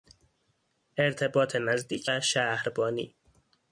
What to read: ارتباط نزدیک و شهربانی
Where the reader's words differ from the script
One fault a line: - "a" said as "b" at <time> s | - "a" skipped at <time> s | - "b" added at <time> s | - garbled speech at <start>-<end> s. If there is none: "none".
none